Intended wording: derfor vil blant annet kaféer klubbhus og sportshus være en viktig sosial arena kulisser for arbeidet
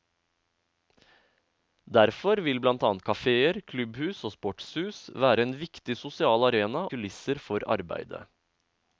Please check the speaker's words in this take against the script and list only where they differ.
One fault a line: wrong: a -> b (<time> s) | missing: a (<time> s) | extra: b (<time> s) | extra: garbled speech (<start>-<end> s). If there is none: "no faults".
no faults